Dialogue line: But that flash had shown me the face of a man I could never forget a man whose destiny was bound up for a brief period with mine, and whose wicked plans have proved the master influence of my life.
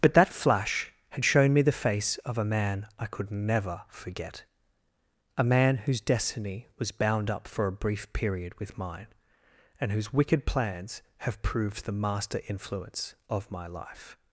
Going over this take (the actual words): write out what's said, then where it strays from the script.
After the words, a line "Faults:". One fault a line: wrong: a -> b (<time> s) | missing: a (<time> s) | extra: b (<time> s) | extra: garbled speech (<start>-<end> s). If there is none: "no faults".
But that flash had shown me the face of a man I could never forget a man whose destiny was bound up for a brief period with mine, and whose wicked plans have proved the master influence of my life.
Faults:
no faults